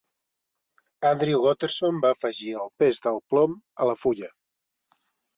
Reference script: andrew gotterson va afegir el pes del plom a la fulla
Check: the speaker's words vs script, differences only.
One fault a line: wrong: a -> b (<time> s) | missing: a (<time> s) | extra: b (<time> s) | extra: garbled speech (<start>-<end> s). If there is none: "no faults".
no faults